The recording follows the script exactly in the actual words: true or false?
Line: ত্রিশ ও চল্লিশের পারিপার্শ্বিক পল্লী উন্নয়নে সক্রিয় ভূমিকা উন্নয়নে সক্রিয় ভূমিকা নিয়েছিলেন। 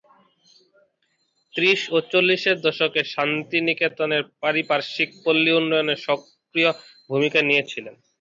false